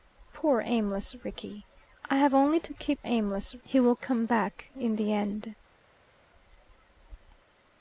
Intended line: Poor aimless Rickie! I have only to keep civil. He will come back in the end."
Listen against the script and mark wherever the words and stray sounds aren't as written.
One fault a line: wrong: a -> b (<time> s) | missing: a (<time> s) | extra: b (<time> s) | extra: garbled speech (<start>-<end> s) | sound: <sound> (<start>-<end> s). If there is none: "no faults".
wrong: civil -> aimless (3.0 s)